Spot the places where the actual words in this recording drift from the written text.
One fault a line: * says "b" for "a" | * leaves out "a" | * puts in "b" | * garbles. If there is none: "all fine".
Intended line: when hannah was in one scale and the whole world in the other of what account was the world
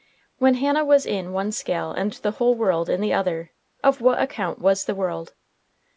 all fine